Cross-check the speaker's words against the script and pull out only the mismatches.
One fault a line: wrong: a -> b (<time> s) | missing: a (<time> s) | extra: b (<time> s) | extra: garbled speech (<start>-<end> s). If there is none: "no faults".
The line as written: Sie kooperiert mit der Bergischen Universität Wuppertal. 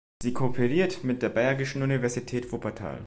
no faults